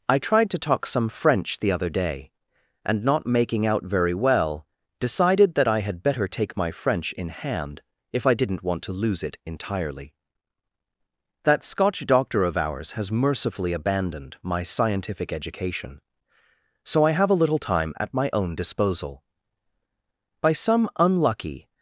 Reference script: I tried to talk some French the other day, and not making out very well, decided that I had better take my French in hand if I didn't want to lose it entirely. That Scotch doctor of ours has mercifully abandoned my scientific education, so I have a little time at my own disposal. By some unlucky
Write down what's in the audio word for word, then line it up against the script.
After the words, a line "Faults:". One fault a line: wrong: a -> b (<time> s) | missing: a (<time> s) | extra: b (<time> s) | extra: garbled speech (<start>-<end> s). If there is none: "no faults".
I tried to talk some French the other day, and not making out very well, decided that I had better take my French in hand if I didn't want to lose it entirely. That Scotch doctor of ours has mercifully abandoned my scientific education, so I have a little time at my own disposal. By some unlucky
Faults:
no faults